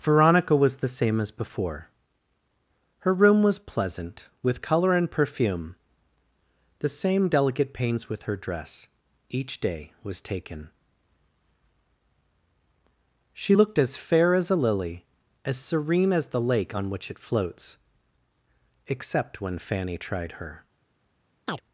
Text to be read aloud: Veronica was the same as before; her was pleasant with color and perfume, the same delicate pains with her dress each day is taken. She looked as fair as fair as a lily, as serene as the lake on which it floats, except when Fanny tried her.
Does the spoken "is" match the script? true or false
false